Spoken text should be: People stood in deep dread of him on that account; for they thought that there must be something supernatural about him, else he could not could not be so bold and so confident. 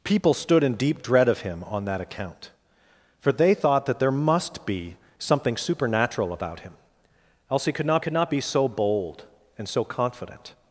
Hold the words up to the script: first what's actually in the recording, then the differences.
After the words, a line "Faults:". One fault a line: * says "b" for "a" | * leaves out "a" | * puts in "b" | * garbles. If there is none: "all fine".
People stood in deep dread of him on that account; for they thought that there must be something supernatural about him, else he could not could not be so bold and so confident.
Faults:
all fine